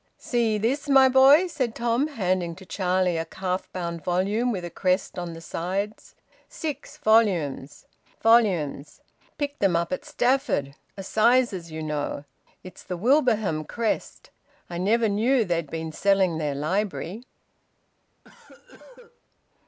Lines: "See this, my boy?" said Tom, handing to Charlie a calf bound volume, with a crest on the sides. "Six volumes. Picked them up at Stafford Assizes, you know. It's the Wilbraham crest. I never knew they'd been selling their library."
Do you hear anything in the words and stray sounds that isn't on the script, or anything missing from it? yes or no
yes